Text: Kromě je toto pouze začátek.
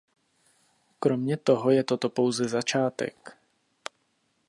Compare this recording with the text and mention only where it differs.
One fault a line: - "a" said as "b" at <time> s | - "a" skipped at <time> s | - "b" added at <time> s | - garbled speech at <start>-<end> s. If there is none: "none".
- "toho" added at 1.4 s